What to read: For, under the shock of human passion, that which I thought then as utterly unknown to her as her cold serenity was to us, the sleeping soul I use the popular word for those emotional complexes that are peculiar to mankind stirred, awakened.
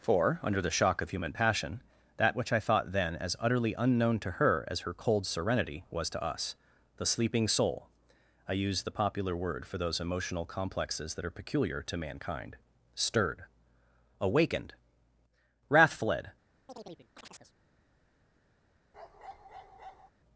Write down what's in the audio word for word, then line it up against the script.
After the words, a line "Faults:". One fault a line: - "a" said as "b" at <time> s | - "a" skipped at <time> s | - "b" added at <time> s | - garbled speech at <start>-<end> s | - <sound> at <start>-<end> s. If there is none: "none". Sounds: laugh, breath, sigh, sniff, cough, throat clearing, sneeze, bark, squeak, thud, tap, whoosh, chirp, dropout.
For, under the shock of human passion, that which I thought then as utterly unknown to her as her cold serenity was to us, the sleeping soul I use the popular word for those emotional complexes that are peculiar to mankind stirred, awakened. Wrath fled
Faults:
- "Wrath fled" added at 15.7 s
- chirp at 16.7-17.5 s
- bark at 18.9-20.1 s